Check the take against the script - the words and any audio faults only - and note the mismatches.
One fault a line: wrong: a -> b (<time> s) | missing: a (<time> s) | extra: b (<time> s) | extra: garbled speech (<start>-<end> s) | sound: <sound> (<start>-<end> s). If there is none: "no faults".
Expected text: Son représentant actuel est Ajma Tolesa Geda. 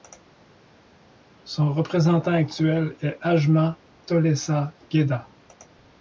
no faults